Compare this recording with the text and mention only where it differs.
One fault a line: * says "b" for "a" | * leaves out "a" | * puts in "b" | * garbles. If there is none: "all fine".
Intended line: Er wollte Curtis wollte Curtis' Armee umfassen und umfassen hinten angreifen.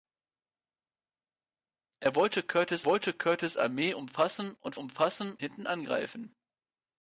all fine